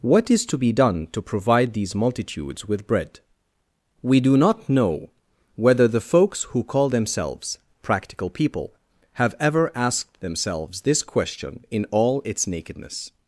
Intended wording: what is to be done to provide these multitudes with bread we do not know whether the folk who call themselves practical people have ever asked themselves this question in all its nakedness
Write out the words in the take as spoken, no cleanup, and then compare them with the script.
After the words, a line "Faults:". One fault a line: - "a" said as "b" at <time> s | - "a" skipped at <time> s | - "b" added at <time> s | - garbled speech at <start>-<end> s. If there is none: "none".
what is to be done to provide these multitudes with bread we do not know whether the folks who call themselves practical people have ever asked themselves this question in all its nakedness
Faults:
- "folk" said as "folks" at 6.0 s